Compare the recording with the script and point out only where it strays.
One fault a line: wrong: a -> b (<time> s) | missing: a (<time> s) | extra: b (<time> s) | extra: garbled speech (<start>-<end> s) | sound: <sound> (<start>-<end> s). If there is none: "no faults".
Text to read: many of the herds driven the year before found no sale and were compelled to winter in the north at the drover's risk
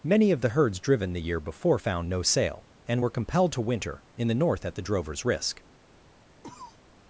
sound: cough (6.4-6.8 s)